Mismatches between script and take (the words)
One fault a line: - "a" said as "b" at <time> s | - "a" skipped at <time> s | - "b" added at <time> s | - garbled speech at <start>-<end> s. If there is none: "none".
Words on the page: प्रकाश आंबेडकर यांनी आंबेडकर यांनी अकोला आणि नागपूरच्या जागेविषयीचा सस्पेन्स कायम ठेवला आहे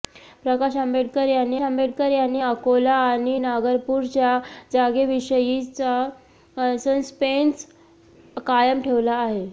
none